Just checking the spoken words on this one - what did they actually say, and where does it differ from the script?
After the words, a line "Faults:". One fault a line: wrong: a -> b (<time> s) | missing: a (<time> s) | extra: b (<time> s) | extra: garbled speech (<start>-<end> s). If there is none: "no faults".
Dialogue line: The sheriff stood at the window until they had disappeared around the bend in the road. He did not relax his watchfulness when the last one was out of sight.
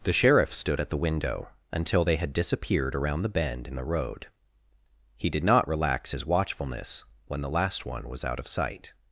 The sheriff stood at the window until they had disappeared around the bend in the road. He did not relax his watchfulness when the last one was out of sight.
Faults:
no faults